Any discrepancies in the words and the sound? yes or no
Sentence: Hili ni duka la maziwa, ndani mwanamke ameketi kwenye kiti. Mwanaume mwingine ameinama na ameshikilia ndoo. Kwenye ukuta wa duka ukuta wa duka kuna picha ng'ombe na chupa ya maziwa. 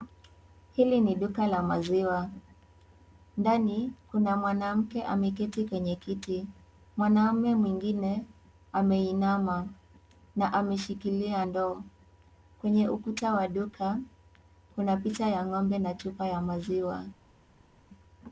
yes